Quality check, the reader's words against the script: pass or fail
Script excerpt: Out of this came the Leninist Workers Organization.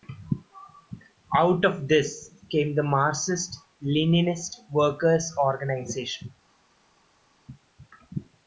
fail